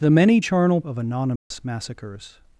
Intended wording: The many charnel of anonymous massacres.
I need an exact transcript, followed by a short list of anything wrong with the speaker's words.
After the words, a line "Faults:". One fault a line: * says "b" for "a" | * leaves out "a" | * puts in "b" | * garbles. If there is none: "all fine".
The many charnel of anonymous massacres.
Faults:
all fine